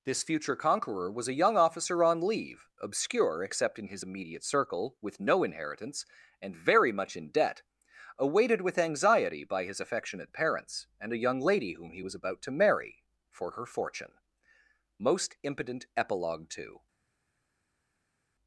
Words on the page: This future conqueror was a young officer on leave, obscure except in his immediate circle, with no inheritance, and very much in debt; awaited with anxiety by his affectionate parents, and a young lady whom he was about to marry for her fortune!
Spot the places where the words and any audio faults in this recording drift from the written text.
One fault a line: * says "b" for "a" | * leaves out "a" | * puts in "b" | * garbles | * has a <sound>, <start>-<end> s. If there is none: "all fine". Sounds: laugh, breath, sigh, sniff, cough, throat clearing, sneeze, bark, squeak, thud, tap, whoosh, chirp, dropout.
* puts in "Most impotent epilogue to"